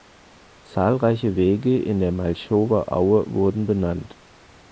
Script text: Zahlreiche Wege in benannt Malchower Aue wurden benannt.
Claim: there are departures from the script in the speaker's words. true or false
true